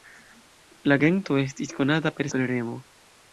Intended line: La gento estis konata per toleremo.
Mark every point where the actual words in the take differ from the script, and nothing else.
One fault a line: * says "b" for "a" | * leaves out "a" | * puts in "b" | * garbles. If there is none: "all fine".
all fine